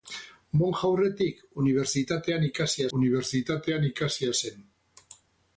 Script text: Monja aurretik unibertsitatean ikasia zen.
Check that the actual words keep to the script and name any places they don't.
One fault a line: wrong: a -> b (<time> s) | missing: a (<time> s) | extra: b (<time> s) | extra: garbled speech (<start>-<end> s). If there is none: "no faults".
extra: unibertsitatean ikasia (3.0 s)